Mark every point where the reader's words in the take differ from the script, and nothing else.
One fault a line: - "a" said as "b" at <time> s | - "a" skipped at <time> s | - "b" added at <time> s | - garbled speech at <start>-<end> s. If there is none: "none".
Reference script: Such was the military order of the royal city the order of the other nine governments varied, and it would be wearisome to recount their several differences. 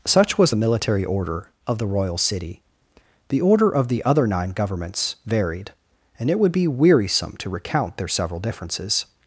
none